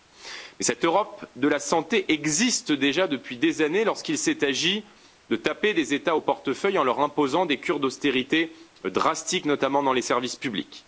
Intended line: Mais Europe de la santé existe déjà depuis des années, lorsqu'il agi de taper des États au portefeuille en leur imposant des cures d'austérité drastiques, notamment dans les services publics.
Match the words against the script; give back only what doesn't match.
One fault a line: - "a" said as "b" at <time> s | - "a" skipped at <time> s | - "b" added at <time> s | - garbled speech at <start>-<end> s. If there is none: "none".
- "cette" added at 0.7 s
- "s'est" added at 4.2 s